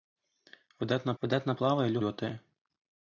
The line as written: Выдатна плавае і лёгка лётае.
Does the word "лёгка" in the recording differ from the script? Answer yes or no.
yes